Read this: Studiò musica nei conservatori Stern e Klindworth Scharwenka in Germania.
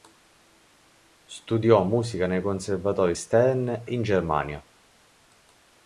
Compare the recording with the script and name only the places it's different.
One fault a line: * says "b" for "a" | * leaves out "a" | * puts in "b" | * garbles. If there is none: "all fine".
* leaves out "e Klindworth Scharwenka"